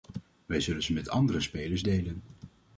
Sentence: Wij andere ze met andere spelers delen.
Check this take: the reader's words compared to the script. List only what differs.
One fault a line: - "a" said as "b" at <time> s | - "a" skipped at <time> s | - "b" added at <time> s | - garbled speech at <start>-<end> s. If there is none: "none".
- "andere" said as "zullen" at 0.6 s